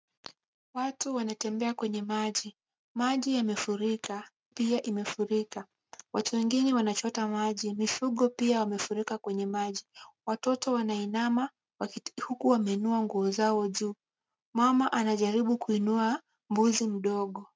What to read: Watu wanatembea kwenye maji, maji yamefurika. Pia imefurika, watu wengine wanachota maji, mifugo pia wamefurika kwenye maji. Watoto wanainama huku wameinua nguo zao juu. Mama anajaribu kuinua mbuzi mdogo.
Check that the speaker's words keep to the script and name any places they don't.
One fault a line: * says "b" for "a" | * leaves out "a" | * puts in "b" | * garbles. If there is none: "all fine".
all fine